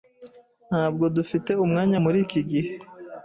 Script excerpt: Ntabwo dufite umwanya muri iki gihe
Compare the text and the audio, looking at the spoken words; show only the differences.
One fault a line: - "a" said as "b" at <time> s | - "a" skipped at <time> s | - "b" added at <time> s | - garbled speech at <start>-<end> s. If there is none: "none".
none